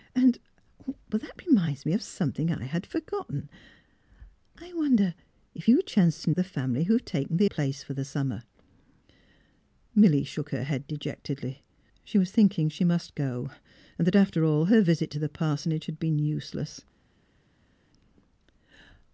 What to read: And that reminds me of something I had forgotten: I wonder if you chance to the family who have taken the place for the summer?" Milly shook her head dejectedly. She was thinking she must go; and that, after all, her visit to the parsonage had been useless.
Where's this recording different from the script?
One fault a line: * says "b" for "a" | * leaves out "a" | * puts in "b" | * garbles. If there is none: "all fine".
all fine